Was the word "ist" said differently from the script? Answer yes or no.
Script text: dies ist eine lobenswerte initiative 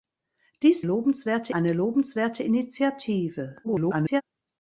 yes